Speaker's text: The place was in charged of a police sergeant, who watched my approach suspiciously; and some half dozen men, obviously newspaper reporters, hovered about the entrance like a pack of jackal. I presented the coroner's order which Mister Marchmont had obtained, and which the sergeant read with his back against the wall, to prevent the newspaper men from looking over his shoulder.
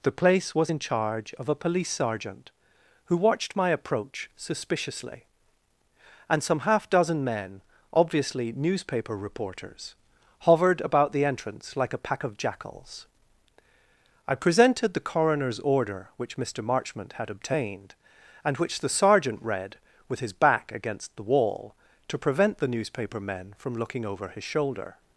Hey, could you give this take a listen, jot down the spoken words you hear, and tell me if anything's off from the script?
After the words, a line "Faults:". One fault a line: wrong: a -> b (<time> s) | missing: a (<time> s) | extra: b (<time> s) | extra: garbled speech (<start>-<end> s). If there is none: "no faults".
The place was in charge of a police sergeant, who watched my approach suspiciously; and some half dozen men, obviously newspaper reporters, hovered about the entrance like a pack of jackals. I presented the coroner's order which Mister Marchmont had obtained, and which the sergeant read with his back against the wall, to prevent the newspaper men from looking over his shoulder.
Faults:
wrong: charged -> charge (0.8 s)
wrong: jackal -> jackals (12.4 s)